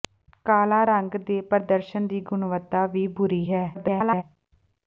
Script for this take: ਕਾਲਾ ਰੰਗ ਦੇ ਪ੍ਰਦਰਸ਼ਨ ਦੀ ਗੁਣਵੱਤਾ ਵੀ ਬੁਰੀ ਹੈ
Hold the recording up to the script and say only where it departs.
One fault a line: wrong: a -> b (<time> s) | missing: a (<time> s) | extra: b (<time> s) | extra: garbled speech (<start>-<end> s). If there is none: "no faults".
extra: garbled speech (3.7-4.2 s)